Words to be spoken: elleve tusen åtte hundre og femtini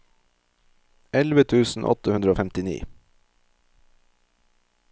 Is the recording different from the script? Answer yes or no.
no